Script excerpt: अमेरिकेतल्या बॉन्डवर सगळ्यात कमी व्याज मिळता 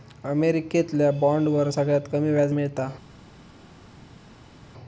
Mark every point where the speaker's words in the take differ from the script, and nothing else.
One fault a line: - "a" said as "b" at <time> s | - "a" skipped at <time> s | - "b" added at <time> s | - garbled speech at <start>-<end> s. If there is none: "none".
none